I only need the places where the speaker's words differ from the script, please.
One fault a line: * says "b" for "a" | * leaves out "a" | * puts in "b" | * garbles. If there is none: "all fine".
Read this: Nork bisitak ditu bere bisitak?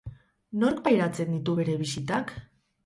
* says "pairatzen" for "bisitak"